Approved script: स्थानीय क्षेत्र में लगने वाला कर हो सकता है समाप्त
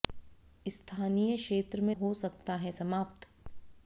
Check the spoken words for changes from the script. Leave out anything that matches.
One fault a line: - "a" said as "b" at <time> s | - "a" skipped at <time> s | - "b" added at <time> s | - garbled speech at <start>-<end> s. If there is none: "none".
- "लगने वाला कर" skipped at 1.9 s